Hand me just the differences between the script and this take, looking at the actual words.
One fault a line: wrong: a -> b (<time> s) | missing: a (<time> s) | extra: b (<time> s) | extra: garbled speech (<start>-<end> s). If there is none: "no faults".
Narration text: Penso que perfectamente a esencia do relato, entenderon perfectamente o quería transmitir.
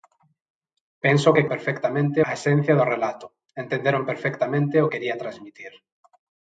no faults